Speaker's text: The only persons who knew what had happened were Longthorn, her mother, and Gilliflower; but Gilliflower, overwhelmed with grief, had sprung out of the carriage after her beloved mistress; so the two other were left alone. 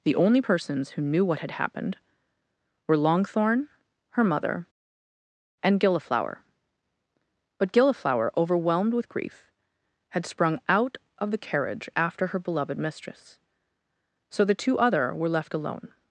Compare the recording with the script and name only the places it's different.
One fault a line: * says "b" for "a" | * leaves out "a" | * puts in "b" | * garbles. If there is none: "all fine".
all fine